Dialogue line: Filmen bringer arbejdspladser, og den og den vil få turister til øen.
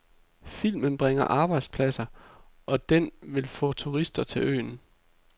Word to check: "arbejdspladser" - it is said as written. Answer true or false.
true